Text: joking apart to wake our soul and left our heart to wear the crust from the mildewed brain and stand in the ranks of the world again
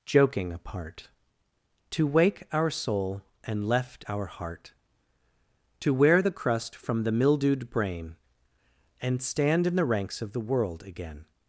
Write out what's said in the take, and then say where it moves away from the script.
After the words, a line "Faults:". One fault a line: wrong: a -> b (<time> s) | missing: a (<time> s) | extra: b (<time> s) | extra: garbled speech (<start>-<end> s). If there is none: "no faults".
joking apart to wake our soul and left our heart to wear the crust from the mildewed brain and stand in the ranks of the world again
Faults:
no faults